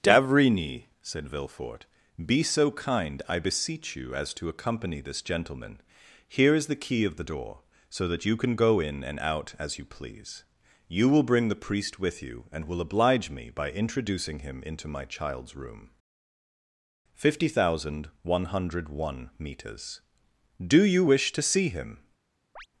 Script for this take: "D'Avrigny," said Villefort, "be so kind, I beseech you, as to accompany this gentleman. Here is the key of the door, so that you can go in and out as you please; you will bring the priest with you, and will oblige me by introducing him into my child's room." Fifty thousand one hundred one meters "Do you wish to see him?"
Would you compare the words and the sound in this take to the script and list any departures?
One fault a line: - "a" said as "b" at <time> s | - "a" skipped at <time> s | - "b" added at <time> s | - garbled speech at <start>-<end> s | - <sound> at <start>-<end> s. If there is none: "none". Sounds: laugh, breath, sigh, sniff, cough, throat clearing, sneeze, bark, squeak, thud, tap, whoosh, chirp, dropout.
- chirp at 22.6-22.7 s